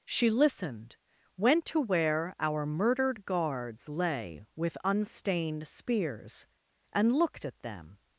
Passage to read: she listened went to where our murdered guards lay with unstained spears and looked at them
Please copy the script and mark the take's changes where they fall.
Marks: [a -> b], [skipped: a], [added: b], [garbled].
she listened went to where our murdered guards lay with unstained spears and looked at them